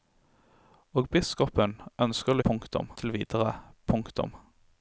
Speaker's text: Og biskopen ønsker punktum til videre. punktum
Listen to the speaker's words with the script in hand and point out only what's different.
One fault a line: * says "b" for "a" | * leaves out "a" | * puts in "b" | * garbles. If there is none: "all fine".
all fine